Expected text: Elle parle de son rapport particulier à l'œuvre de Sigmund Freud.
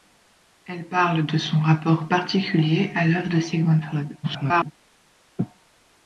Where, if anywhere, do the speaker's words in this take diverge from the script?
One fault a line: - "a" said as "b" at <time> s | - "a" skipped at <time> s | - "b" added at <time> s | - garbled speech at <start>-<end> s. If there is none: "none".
- garbled speech at 4.2-4.7 s